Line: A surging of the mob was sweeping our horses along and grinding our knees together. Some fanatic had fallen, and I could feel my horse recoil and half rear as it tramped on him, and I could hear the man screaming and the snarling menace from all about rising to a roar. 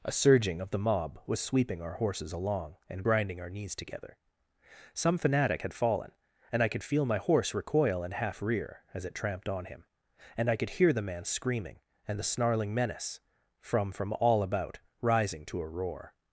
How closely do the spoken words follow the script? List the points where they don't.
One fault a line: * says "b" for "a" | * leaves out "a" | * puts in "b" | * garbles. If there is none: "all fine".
* puts in "from"